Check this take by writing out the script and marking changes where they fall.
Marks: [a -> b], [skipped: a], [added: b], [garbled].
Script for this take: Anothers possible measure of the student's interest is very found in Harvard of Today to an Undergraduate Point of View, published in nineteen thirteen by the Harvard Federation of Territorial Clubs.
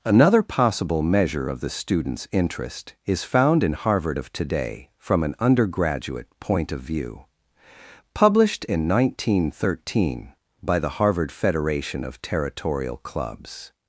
[Anothers -> Another] possible measure of the student's interest is [skipped: very] found in Harvard of Today [to -> from] an Undergraduate Point of View, published in nineteen thirteen by the Harvard Federation of Territorial Clubs.